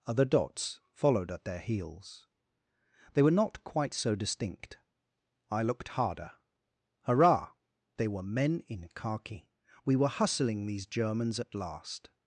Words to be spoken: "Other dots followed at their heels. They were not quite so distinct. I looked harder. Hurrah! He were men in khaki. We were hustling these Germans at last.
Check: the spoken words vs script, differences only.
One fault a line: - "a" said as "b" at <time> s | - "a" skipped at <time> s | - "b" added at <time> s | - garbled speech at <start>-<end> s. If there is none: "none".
- "He" said as "They" at 8.0 s